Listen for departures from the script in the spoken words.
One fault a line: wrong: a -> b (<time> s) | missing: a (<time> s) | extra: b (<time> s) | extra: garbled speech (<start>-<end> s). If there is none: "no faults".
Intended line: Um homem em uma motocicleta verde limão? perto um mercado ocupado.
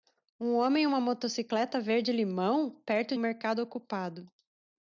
no faults